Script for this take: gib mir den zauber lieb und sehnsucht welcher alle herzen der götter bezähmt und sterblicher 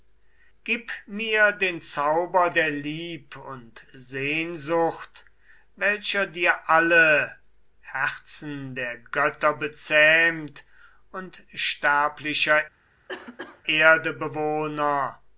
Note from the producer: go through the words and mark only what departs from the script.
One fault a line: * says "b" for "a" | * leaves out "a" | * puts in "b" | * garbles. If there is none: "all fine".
* puts in "der"
* puts in "dir"